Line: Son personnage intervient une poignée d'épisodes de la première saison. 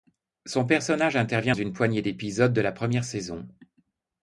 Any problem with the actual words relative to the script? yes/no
no